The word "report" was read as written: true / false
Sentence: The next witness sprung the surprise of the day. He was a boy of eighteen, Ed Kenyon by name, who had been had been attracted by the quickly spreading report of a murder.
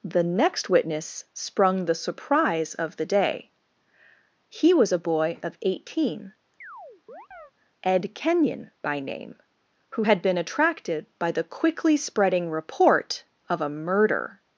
true